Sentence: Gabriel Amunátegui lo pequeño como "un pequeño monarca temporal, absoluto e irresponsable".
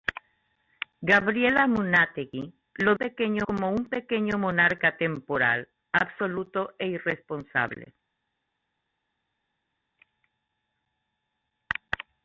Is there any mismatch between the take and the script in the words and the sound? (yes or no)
no